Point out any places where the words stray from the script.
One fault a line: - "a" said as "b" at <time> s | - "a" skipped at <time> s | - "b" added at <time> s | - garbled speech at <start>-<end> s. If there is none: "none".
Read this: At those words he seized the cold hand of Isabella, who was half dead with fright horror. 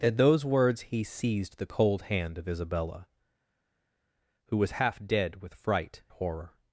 none